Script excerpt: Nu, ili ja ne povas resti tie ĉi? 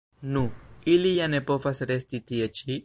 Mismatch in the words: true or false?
false